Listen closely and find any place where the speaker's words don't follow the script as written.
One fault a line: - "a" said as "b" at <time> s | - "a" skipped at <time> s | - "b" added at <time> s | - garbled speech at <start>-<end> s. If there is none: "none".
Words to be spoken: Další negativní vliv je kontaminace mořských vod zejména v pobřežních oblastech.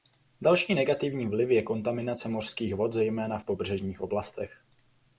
none